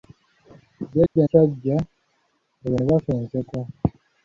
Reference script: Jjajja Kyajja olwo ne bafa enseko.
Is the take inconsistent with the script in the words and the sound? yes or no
yes